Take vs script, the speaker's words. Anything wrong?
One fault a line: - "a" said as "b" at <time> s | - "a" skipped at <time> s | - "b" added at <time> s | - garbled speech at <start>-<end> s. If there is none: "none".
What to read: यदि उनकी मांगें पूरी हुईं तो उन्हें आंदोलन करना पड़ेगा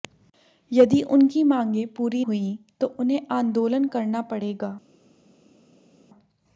none